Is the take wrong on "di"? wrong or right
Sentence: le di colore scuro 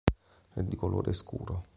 right